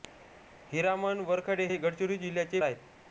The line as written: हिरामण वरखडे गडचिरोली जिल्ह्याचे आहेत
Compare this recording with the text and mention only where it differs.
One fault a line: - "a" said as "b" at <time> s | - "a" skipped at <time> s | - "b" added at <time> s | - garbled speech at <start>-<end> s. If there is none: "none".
none